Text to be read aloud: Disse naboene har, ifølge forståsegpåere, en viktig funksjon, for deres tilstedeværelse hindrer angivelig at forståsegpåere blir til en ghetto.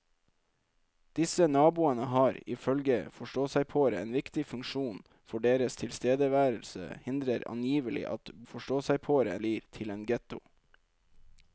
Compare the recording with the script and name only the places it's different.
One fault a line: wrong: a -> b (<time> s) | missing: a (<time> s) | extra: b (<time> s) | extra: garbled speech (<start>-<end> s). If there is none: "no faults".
no faults